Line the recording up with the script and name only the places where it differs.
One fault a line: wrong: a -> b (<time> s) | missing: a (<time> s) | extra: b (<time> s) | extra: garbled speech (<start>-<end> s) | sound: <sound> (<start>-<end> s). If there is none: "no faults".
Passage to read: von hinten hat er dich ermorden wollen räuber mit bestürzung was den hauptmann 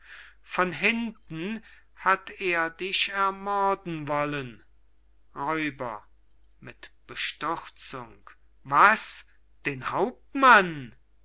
no faults